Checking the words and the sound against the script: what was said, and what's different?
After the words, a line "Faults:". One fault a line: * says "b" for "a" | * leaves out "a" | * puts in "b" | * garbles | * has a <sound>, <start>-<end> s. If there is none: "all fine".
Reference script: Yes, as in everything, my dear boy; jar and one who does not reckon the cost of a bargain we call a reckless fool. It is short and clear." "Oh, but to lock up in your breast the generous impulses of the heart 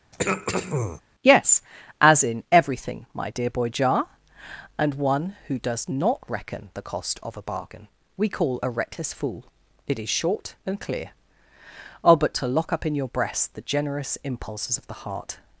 Yes, as in everything, my dear boy; jar and one who does not reckon the cost of a bargain we call a reckless fool. It is short and clear." "Oh, but to lock up in your breast the generous impulses of the heart
Faults:
* has a throat clearing, 0.1-1.0 s